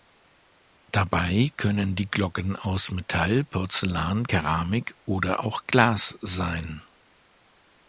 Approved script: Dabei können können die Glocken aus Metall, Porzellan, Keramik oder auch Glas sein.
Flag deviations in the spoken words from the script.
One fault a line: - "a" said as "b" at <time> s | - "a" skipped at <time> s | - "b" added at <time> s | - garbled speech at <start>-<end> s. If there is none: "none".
- "können" skipped at 1.9 s